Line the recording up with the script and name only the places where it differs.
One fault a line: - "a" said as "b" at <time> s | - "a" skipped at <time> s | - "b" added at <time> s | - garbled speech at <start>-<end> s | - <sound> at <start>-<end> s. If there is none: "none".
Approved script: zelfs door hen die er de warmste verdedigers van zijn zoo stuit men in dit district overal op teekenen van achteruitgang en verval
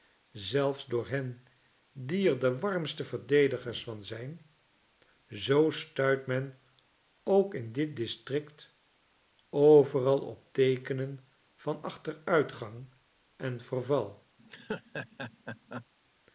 - "ook" added at 7.2 s
- laugh at 14.4-15.9 s